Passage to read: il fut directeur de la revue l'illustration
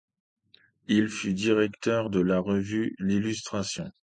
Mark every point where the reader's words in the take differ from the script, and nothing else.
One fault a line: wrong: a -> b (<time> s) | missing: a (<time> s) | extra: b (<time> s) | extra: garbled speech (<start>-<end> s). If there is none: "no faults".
no faults